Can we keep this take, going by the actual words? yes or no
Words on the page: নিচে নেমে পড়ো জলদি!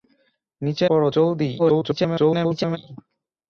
no